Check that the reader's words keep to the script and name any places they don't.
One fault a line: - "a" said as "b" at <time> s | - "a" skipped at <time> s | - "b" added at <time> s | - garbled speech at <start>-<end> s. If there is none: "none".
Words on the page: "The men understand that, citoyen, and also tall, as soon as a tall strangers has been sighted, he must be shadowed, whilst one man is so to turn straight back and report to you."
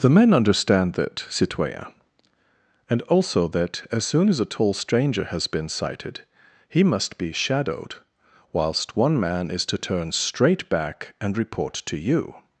- "tall" said as "that" at 3.5 s
- "strangers" said as "stranger" at 4.7 s
- "so" skipped at 9.6 s